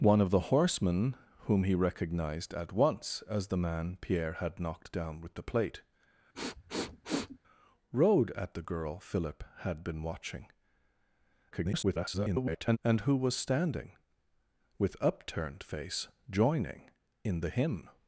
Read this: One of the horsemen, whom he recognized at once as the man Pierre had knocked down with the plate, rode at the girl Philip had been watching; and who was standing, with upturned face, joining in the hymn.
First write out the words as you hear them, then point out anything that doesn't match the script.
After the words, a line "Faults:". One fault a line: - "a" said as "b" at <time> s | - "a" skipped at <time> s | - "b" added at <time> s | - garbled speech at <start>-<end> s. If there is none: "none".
One of the horsemen, whom he recognized at once as the man Pierre had knocked down with the plate, rode at the girl Philip had been watching; [garbled] and who was standing, with upturned face, joining in the hymn.
Faults:
- garbled speech at 11.5-12.8 s